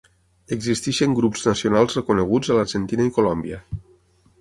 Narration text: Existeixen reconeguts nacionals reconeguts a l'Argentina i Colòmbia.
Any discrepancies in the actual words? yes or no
yes